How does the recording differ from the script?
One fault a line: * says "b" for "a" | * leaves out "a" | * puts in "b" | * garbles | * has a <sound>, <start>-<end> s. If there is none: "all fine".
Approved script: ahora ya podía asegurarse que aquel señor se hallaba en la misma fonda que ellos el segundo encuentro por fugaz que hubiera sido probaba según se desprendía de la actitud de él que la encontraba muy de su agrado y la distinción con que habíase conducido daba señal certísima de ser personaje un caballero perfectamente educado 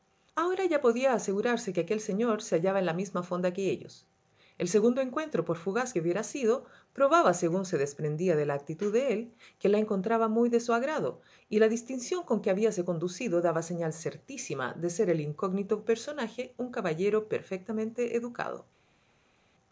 * puts in "el incógnito"